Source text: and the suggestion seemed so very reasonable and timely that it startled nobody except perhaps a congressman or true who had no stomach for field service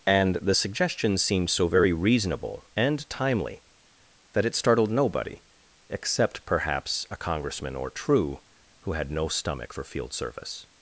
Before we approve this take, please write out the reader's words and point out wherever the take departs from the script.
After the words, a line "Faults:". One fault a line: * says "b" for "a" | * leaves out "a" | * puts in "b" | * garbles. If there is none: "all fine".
and the suggestion seemed so very reasonable and timely that it startled nobody except perhaps a congressman or true who had no stomach for field service
Faults:
all fine